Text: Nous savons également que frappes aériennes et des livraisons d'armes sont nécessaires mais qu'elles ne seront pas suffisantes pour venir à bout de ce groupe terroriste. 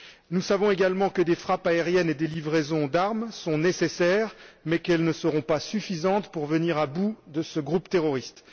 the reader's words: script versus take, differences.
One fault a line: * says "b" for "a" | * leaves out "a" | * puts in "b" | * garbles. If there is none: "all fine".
* puts in "des"